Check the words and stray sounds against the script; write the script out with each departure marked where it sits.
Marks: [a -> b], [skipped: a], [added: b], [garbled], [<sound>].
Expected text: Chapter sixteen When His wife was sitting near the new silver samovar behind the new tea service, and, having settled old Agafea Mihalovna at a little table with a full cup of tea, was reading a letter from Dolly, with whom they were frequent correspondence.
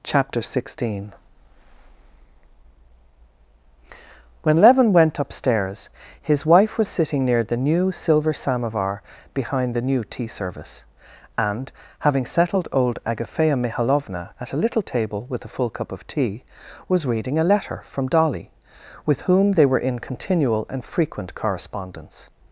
Chapter sixteen When [added: Levin went upstairs] His wife was sitting near the new silver samovar behind the new tea service, and, having settled old Agafea Mihalovna at a little table with a full cup of tea, was reading a letter from Dolly, with whom they were [added: in continual and] frequent correspondence.